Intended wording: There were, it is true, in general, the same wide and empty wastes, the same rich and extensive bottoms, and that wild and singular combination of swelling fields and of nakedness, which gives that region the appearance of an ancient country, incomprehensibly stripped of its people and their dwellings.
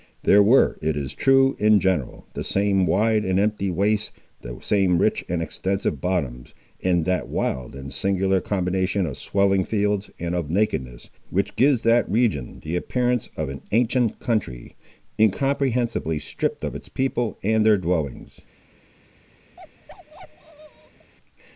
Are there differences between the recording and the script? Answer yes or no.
no